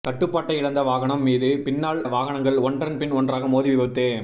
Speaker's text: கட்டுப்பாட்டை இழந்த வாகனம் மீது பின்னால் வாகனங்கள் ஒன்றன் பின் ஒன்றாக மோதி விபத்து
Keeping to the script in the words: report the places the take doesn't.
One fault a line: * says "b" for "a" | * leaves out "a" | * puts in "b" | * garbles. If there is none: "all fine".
all fine